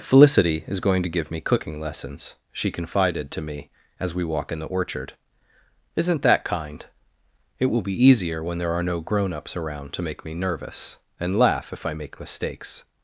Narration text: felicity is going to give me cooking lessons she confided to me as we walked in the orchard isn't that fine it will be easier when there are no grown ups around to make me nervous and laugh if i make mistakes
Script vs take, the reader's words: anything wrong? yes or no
yes